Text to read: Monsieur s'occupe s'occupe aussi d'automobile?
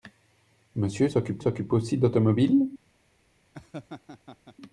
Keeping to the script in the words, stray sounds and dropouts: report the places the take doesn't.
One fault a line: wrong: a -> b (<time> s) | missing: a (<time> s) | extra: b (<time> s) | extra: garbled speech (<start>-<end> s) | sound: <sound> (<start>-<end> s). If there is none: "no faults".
sound: laugh (3.5-4.6 s)